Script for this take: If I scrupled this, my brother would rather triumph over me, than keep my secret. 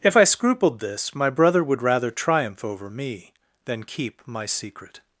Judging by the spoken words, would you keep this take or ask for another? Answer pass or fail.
pass